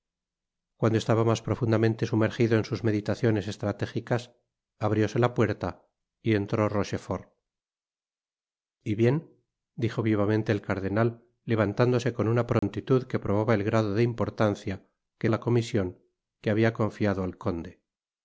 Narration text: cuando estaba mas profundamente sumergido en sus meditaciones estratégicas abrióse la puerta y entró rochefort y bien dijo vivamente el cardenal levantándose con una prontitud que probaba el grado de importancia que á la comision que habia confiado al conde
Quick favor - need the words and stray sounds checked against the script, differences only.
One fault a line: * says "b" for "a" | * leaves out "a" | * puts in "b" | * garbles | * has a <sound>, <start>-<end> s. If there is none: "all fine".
* has a dropout, 12.6-12.6 s